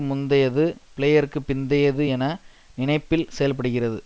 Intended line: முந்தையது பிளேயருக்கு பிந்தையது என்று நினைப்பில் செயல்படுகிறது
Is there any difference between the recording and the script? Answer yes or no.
yes